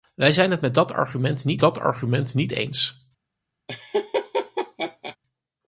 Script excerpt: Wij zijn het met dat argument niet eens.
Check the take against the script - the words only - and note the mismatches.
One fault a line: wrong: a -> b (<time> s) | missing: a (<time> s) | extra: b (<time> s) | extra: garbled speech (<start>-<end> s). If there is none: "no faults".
extra: dat argument niet (1.6 s)